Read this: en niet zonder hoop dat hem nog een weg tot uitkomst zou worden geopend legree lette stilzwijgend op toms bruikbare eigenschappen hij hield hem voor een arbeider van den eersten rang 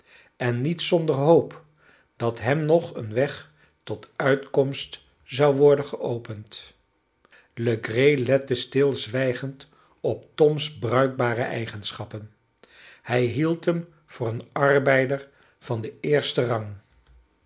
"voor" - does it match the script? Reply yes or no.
yes